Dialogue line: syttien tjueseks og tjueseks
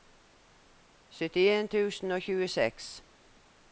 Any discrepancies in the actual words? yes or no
yes